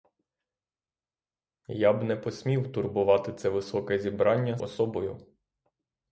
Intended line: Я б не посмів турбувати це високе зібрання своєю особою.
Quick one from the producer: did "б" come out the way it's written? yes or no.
yes